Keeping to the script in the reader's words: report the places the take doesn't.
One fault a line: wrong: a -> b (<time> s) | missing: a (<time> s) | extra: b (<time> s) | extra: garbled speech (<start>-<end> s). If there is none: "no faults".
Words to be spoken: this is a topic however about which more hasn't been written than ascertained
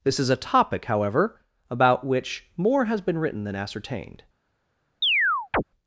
wrong: hasn't -> has (2.9 s)